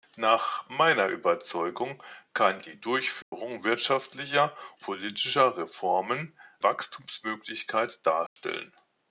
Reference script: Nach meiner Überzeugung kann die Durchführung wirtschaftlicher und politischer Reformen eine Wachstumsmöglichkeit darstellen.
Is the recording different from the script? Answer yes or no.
yes